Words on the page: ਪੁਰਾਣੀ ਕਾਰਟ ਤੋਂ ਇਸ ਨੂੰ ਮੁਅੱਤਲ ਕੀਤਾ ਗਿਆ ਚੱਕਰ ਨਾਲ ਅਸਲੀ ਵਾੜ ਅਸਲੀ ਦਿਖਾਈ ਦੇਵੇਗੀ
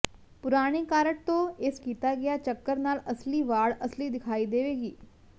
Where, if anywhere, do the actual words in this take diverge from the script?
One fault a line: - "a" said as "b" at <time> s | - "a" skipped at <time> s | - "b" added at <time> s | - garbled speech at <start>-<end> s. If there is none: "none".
- "ਨੂੰ ਮੁਅੱਤਲ" skipped at 1.8 s